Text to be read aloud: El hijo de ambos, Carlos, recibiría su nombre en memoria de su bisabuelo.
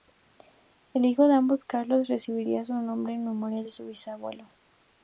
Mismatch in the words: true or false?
false